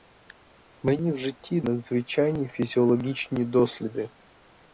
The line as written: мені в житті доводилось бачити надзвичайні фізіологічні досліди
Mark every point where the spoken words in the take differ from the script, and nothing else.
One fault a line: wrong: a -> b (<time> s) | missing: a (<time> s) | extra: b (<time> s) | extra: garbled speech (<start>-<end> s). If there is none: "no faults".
missing: доводилось бачити (1.6 s)